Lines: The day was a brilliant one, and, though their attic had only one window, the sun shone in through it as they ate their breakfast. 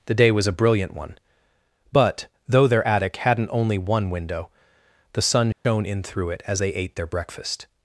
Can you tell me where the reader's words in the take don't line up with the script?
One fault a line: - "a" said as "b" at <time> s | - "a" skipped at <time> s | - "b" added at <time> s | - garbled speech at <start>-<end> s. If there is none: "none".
- "and" said as "but" at 1.9 s
- "had" said as "hadn't" at 3.2 s